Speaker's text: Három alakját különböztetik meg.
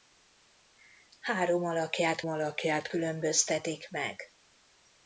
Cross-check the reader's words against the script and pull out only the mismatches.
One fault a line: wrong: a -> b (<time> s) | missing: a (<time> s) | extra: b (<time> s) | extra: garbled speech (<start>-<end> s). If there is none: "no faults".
extra: alakját (2.3 s)